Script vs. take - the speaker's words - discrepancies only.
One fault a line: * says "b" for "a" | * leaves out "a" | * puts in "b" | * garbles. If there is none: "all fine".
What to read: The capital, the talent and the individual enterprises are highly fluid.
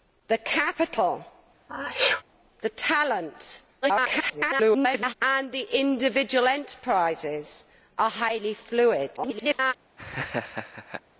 * garbles
* garbles